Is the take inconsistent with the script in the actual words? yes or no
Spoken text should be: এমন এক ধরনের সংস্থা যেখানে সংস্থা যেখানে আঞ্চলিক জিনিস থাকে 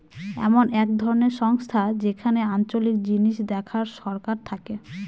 yes